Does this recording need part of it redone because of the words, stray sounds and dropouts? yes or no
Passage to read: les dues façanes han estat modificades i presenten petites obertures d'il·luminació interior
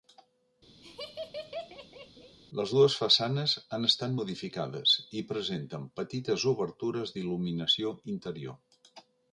yes